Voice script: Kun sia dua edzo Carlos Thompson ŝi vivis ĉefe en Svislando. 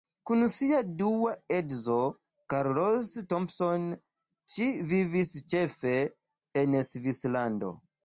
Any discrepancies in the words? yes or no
no